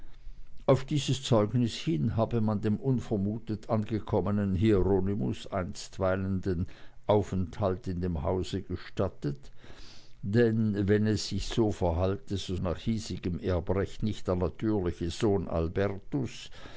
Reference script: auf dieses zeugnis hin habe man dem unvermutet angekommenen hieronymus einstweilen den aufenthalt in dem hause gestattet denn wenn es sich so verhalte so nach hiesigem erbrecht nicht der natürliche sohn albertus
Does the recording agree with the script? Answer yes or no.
yes